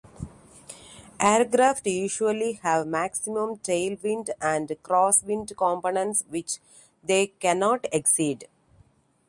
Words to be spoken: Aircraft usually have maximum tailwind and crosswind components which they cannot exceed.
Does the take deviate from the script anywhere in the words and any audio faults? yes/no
no